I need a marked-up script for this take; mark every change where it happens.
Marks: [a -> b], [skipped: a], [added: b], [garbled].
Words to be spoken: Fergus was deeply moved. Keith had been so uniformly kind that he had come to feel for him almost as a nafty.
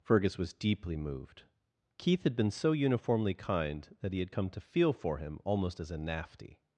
Fergus was deeply moved. Keith had been so uniformly kind that he had come to feel for him almost as a nafty.